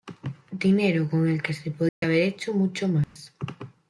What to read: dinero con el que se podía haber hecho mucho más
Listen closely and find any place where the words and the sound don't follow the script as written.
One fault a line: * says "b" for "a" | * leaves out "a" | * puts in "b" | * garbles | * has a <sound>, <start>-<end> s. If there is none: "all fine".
* has a dropout, 1.9-2.0 s
* has a dropout, 3.0-3.2 s